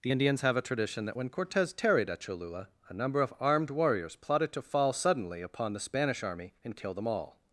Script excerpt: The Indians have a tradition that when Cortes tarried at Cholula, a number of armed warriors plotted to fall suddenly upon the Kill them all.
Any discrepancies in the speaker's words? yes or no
yes